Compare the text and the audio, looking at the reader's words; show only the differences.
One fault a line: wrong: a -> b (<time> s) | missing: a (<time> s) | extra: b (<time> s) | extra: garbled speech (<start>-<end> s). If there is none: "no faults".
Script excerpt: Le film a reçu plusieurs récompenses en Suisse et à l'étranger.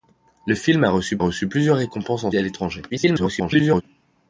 extra: reçu (1.2 s)
missing: Suisse (2.3 s)
extra: garbled speech (2.9-3.8 s)